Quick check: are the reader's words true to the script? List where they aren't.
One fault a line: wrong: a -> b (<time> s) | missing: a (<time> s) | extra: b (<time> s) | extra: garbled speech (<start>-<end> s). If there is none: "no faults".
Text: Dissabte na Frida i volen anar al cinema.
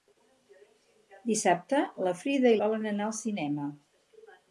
no faults